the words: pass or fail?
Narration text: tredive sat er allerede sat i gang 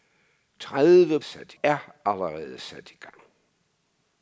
pass